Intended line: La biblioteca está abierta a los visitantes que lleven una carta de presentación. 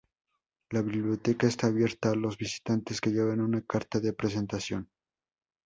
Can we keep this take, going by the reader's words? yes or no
yes